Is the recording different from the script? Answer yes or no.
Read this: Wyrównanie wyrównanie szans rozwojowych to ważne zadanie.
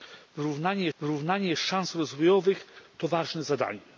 no